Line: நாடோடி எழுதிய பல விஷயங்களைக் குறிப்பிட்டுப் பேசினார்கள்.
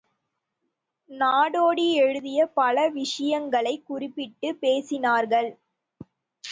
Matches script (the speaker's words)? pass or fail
pass